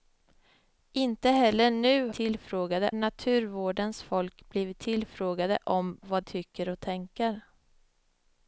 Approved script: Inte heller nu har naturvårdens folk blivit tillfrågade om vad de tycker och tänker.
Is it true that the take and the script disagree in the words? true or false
true